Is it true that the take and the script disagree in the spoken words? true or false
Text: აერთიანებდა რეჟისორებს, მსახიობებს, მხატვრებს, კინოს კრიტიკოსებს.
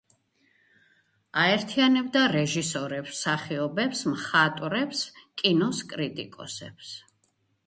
false